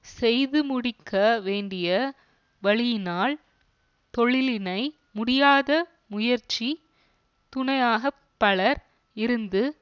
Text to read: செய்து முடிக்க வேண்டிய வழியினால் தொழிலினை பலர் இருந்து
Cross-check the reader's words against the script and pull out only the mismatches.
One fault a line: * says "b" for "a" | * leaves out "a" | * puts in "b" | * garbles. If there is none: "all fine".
* puts in "முடியாத முயற்சி துணையாக"